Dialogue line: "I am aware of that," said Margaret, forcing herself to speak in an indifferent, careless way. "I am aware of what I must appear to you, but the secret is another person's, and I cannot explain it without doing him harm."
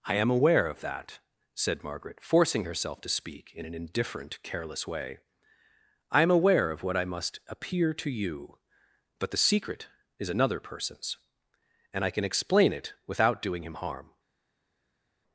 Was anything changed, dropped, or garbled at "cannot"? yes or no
yes